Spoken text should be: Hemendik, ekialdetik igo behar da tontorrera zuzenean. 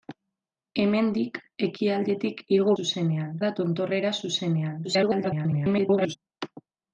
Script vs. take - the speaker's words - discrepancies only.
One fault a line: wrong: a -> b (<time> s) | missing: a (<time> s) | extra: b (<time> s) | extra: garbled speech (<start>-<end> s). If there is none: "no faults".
wrong: behar -> zuzenean (2.8 s)
extra: garbled speech (4.8-6.2 s)